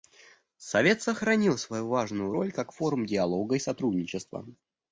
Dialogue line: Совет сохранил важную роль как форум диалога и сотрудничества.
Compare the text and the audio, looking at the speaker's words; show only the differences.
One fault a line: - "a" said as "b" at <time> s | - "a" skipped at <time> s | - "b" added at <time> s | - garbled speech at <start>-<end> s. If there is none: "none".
- "свою" added at 1.6 s